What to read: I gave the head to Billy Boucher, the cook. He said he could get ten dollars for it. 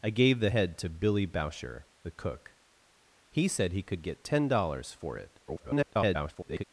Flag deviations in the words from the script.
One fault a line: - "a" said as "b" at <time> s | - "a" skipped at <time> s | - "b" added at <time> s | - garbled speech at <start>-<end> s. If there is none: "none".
- garbled speech at 5.5-6.6 s